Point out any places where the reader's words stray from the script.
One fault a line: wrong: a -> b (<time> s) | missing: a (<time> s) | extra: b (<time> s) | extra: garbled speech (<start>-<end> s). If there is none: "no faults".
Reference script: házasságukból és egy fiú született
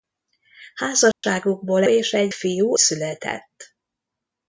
no faults